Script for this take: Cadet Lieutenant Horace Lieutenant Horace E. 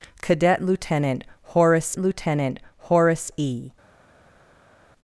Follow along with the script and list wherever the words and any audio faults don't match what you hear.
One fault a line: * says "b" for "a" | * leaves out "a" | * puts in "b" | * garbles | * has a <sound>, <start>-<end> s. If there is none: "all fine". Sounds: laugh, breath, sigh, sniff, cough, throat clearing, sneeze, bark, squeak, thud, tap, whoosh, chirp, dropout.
all fine